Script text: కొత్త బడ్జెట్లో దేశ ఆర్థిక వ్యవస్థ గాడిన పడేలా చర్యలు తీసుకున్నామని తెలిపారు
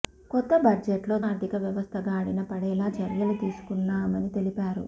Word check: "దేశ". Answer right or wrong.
wrong